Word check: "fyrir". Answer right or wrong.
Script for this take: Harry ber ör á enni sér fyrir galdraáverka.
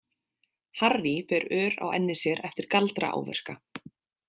wrong